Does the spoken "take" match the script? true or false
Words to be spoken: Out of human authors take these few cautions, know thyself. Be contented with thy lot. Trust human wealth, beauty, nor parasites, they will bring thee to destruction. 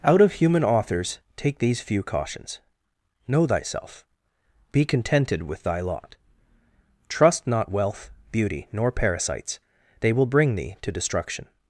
true